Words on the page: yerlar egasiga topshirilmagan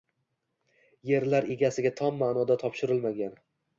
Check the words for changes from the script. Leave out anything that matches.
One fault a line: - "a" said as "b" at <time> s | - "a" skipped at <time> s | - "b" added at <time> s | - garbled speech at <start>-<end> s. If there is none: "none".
- "tom ma'noda" added at 2.0 s